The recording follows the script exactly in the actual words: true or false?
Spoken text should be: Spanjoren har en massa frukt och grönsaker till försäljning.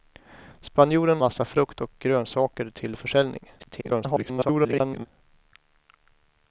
false